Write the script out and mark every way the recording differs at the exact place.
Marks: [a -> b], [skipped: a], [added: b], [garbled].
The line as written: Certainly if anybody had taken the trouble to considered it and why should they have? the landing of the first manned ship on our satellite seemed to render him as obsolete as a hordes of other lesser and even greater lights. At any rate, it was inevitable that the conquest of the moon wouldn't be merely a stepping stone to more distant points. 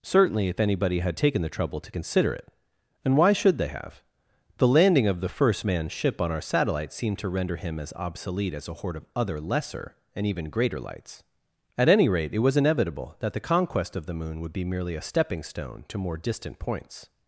Certainly if anybody had taken the trouble to [considered -> consider] it and why should they have? the landing of the first manned ship on our satellite seemed to render him as obsolete as a [hordes -> horde] of other lesser and even greater lights. At any rate, it was inevitable that the conquest of the moon [wouldn't -> would] be merely a stepping stone to more distant points.